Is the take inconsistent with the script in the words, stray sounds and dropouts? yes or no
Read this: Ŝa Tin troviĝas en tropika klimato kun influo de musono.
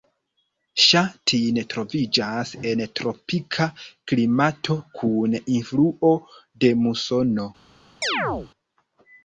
yes